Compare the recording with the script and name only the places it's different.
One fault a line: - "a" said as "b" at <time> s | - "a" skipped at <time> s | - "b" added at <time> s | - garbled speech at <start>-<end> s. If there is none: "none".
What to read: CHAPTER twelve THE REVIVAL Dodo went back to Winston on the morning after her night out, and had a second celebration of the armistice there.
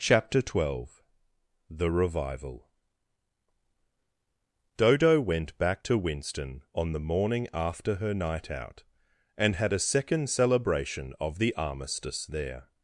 none